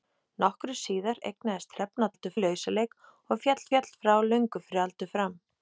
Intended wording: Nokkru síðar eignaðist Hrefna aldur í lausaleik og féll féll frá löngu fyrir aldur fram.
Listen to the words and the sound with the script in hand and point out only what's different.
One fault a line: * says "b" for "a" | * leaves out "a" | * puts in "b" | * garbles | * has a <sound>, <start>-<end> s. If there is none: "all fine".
all fine